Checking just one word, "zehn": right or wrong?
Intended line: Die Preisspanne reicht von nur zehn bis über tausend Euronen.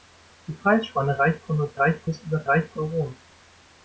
wrong